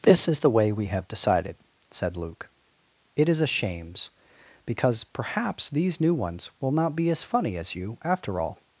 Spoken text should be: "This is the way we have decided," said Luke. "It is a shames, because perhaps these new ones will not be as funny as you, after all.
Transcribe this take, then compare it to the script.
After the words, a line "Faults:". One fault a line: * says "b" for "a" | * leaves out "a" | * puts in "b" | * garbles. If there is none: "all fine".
"This is the way we have decided," said Luke. "It is a shames, because perhaps these new ones will not be as funny as you, after all.
Faults:
all fine